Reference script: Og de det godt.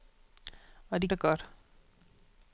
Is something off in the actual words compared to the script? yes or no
no